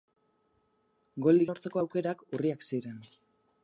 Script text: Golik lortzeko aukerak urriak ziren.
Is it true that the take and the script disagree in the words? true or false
false